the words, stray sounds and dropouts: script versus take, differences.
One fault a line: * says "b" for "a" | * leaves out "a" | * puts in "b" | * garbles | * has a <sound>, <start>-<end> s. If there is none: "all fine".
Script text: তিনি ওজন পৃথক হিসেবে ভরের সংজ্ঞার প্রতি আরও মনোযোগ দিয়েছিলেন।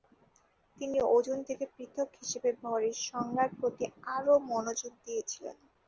* puts in "থেকে"